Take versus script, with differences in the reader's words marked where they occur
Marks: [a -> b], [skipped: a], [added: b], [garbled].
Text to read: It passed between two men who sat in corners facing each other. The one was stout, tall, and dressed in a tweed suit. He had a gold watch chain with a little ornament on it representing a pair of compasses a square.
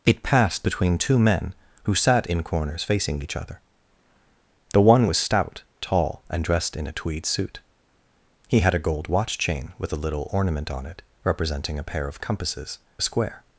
It passed between two men who sat in corners facing each other. The one was stout, tall, and dressed in a tweed suit. He had a gold watch chain with a little ornament on it representing a pair of compasses a square.